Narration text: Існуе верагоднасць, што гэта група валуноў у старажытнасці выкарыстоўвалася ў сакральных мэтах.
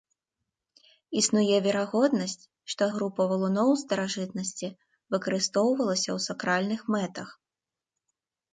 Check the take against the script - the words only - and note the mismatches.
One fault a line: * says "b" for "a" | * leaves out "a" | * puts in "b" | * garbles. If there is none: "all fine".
* leaves out "гэта"